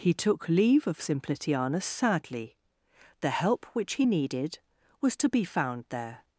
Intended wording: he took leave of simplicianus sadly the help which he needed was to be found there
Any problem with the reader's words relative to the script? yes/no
no